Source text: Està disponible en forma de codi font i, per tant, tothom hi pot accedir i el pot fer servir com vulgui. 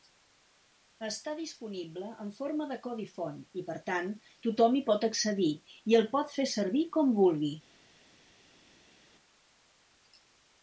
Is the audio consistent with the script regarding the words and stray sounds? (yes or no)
yes